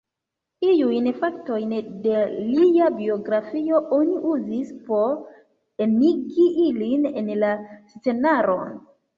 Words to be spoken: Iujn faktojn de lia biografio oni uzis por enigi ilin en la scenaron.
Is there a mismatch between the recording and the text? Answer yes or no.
no